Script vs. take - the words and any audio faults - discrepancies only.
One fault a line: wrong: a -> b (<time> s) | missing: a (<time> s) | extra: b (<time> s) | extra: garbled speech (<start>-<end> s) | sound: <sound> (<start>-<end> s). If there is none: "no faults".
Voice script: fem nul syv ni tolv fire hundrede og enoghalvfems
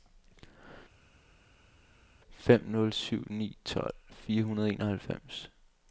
no faults